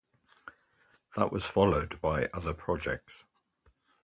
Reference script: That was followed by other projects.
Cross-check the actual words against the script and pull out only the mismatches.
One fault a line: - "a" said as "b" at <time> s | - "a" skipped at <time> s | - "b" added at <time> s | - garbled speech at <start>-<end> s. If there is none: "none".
none